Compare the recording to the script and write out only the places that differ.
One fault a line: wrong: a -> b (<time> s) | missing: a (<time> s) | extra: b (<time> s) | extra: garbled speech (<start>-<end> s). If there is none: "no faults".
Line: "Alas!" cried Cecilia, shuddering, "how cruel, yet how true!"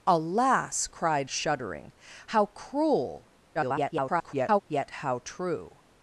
missing: Cecilia (1.3 s)
extra: garbled speech (3.5-4.6 s)